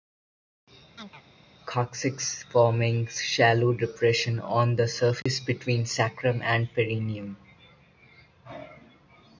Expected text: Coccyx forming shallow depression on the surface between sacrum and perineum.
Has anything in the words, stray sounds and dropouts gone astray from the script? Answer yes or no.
yes